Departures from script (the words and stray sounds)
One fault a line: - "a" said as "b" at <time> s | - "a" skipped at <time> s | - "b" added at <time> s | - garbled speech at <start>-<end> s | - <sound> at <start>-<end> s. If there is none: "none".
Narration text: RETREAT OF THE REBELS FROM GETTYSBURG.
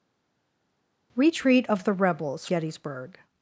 - "FROM" skipped at 2.5 s